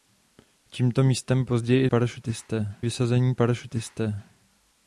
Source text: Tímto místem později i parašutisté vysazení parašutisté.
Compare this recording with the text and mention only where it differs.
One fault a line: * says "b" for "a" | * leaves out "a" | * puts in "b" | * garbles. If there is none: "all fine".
all fine